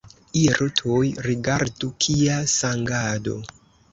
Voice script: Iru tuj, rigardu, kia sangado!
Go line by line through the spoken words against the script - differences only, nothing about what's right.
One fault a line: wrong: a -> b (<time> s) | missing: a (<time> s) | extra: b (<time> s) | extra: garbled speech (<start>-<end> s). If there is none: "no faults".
no faults